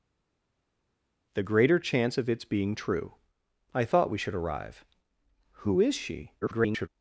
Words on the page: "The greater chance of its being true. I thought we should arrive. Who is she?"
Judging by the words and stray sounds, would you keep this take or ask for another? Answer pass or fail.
fail